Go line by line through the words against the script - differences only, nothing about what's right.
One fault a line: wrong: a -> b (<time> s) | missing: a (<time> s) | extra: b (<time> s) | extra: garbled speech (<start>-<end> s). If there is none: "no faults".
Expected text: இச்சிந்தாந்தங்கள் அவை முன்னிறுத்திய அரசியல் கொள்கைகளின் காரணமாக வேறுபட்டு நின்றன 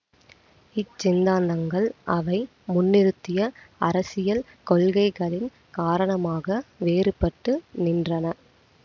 no faults